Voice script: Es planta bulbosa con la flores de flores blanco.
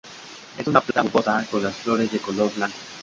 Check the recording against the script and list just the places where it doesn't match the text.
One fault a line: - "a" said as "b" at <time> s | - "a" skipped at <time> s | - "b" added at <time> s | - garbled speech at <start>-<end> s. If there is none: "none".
- "una" added at 0.7 s
- "la" said as "las" at 1.6 s
- "flores" said as "color" at 2.2 s